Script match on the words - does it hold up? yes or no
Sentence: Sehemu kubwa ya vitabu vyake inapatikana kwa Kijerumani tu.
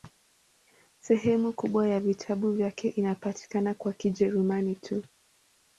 yes